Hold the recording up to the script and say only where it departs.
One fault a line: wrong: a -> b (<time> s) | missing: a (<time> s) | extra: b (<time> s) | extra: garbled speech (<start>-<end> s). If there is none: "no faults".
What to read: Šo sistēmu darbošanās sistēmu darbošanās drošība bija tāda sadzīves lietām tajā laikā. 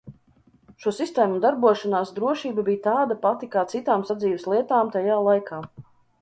missing: sistēmu darbošanās (2.1 s)
extra: pati kā citām (3.2 s)